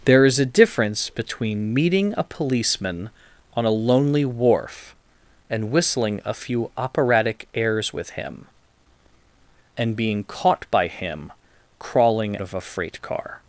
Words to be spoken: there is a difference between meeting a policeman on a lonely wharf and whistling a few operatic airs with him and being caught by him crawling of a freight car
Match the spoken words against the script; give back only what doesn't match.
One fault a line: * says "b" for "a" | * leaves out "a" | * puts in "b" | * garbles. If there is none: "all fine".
all fine